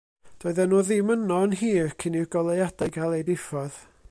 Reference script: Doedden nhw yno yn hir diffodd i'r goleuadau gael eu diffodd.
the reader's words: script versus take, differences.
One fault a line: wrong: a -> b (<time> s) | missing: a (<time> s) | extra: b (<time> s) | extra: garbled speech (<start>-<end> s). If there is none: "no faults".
extra: ddim (0.9 s)
wrong: diffodd -> cyn (2.0 s)